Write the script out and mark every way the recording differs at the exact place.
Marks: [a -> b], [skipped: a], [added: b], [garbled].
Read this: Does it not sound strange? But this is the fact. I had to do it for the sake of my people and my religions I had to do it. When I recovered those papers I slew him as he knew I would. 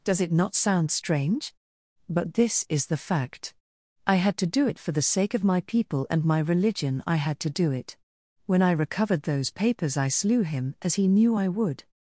Does it not sound strange? But this is the fact. I had to do it for the sake of my people and my [religions -> religion] I had to do it. When I recovered those papers I slew him as he knew I would.